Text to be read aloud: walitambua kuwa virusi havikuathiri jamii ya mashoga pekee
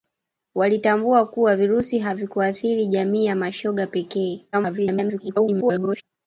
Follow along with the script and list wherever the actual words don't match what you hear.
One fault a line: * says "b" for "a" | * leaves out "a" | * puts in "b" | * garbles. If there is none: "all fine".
* garbles